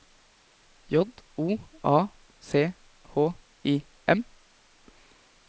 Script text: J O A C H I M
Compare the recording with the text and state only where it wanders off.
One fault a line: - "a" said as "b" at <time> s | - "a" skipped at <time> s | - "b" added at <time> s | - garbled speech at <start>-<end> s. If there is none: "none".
none